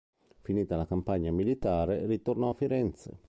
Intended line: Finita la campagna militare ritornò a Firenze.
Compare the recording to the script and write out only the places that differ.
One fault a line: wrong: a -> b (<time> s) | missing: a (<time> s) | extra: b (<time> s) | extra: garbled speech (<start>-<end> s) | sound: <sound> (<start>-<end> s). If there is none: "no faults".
no faults